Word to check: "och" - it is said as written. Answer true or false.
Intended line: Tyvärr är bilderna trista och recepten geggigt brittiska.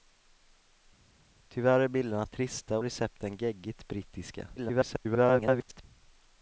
false